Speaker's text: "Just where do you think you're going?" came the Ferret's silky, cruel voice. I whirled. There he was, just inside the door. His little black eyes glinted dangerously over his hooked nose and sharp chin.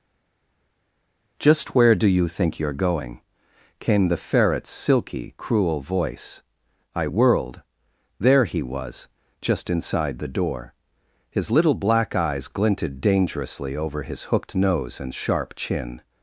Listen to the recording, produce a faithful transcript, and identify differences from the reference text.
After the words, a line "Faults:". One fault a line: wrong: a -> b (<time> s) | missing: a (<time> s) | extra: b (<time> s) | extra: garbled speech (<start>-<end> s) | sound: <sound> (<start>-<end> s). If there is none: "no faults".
"Just where do you think you're going?" came the Ferret's silky, cruel voice. I whirled. There he was, just inside the door. His little black eyes glinted dangerously over his hooked nose and sharp chin.
Faults:
no faults